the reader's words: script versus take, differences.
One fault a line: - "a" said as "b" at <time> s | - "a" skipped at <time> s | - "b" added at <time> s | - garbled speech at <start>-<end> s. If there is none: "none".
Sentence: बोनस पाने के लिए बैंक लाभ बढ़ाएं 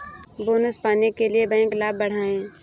none